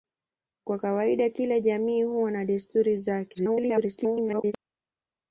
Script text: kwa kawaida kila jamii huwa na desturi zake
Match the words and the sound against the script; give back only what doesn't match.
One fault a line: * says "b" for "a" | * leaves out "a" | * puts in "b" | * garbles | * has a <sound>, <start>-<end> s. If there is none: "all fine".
* garbles